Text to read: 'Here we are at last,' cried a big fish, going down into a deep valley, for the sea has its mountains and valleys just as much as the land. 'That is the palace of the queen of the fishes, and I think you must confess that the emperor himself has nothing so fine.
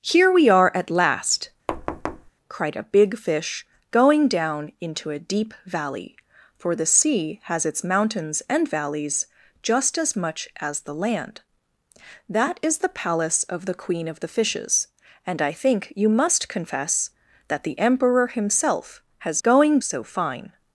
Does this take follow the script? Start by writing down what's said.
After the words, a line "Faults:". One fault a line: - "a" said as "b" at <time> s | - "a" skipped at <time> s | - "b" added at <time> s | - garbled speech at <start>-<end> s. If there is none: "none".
'Here we are at last,' cried a big fish, going down into a deep valley, for the sea has its mountains and valleys just as much as the land. 'That is the palace of the queen of the fishes, and I think you must confess that the emperor himself has going so fine.
Faults:
- "nothing" said as "going" at 19.4 s